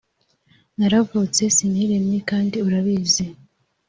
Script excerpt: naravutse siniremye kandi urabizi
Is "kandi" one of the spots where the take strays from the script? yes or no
no